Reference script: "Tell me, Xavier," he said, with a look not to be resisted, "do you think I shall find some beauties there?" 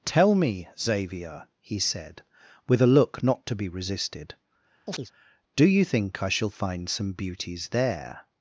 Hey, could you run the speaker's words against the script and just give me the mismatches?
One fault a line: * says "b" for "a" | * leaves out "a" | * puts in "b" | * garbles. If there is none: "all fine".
all fine